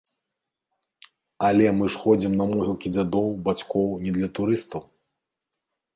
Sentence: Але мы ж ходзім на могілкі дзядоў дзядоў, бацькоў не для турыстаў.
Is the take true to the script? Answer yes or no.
no